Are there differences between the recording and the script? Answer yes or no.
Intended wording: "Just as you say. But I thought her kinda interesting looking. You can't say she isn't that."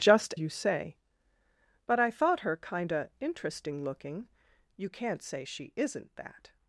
yes